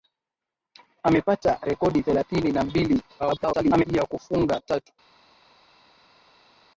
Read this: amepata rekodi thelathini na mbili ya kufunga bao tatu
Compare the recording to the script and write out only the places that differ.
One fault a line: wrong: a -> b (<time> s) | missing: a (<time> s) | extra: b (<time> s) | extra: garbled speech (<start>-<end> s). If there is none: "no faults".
extra: garbled speech (3.2-3.8 s)
missing: bao (4.6 s)